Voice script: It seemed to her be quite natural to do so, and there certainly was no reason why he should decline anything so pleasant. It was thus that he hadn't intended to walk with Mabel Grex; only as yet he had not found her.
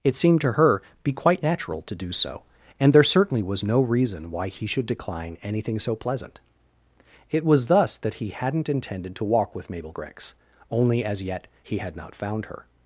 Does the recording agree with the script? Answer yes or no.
yes